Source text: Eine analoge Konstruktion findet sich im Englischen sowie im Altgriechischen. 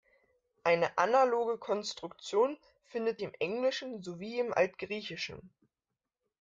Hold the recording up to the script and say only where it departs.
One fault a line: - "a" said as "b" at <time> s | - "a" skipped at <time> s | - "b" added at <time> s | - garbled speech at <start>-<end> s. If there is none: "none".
- "sich" skipped at 3.2 s